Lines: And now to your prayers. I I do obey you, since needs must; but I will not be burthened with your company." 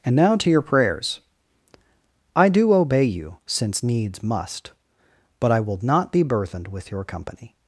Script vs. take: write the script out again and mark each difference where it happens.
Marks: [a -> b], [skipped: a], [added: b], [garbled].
And now to your prayers. I [skipped: I] do obey you, since needs must; but I will not be burthened with your company."